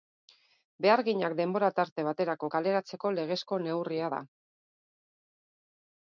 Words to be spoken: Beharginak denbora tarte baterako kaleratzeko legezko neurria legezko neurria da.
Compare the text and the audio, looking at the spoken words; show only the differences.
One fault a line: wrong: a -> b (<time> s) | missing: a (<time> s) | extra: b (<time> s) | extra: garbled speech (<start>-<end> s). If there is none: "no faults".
missing: legezko neurria (4.1 s)